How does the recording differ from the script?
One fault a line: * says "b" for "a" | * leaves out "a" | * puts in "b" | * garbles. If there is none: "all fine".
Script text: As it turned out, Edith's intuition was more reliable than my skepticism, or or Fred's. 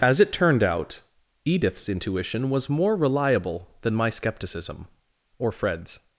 * leaves out "or"